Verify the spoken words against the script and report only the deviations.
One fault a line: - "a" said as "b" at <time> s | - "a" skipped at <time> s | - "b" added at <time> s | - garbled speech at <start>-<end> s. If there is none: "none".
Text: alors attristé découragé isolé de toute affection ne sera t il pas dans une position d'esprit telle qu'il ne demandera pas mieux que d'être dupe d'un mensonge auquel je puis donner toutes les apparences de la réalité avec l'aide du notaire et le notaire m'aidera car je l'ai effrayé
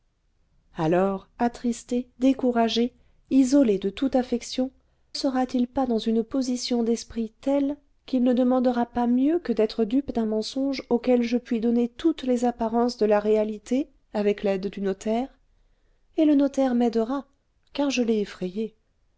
- "ne" skipped at 4.7 s